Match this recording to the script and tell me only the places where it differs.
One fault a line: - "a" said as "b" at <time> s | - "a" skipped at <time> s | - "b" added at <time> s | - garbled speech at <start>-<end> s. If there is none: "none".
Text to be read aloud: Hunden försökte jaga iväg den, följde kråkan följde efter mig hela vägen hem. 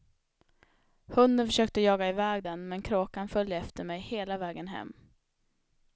- "följde" said as "men" at 2.7 s